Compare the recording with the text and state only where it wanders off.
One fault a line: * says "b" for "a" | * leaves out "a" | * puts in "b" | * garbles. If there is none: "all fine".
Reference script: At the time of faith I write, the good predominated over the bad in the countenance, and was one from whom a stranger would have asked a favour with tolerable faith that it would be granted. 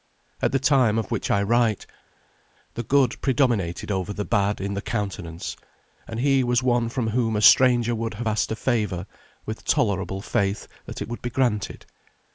* says "which" for "faith"
* puts in "he"